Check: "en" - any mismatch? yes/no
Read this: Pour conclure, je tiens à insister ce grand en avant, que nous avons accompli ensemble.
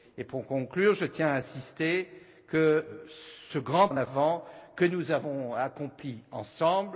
no